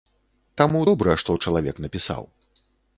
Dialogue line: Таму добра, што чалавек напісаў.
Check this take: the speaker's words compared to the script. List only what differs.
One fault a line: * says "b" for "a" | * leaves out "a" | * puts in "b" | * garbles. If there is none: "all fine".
all fine